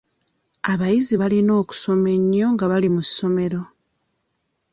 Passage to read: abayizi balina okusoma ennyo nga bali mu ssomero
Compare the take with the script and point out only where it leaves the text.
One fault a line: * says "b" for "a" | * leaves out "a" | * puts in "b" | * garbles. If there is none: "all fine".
all fine